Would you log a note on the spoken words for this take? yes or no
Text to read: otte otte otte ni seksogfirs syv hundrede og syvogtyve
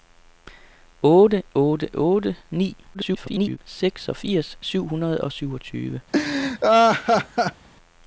yes